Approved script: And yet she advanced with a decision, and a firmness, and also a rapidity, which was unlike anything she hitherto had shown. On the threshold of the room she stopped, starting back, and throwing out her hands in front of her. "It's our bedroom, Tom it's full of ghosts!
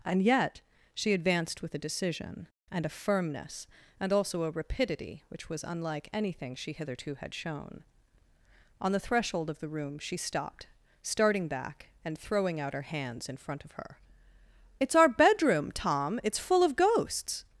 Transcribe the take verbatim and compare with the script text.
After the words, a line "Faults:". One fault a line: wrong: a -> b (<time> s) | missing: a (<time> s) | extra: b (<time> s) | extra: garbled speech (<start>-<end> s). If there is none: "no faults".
And yet she advanced with a decision, and a firmness, and also a rapidity, which was unlike anything she hitherto had shown. On the threshold of the room she stopped, starting back, and throwing out her hands in front of her. "It's our bedroom, Tom it's full of ghosts!
Faults:
no faults